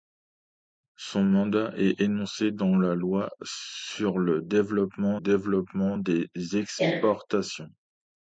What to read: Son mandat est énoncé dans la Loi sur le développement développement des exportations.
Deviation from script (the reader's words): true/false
false